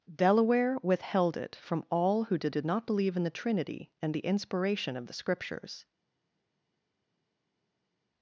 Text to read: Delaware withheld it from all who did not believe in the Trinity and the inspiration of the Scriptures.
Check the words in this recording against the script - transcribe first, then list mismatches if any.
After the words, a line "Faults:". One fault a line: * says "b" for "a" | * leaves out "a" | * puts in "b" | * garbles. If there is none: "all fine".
Delaware withheld it from all who did did not believe in the Trinity and the inspiration of the Scriptures.
Faults:
* puts in "did"